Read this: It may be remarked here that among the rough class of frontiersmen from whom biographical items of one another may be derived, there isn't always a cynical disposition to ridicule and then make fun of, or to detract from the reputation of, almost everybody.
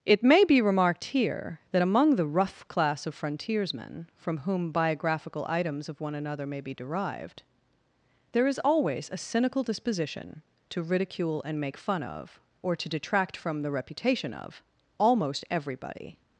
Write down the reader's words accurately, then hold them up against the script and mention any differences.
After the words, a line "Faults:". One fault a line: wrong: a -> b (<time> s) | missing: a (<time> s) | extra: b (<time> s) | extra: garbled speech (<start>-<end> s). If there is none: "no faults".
It may be remarked here that among the rough class of frontiersmen from whom biographical items of one another may be derived, there is always a cynical disposition to ridicule and make fun of, or to detract from the reputation of, almost everybody.
Faults:
wrong: isn't -> is (8.5 s)
missing: then (11.6 s)